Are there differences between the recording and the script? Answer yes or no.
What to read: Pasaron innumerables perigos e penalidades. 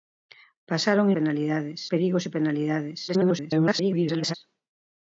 yes